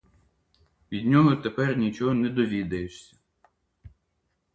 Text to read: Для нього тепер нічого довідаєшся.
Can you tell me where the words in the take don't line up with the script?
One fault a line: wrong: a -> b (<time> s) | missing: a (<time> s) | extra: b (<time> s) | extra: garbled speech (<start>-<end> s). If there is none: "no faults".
wrong: Для -> Від (0.9 s)
extra: не (2.1 s)